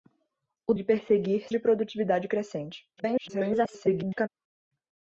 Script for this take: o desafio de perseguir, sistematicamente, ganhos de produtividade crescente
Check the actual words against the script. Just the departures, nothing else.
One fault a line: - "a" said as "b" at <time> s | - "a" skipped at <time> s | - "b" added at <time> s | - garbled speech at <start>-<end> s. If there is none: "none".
- "desafio" skipped at 0.7 s
- "sistematicamente ganhos" skipped at 1.5 s
- garbled speech at 3.0-4.3 s